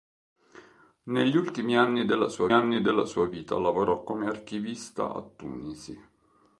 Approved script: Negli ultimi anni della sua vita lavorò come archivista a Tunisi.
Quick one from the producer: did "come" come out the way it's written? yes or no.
yes